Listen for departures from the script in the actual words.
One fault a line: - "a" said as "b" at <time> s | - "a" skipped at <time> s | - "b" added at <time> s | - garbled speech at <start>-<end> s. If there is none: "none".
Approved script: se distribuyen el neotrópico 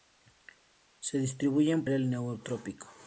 none